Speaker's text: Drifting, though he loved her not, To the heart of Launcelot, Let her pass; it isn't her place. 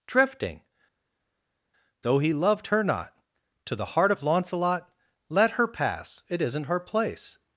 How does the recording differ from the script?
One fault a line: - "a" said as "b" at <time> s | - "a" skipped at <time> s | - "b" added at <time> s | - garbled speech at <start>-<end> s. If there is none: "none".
none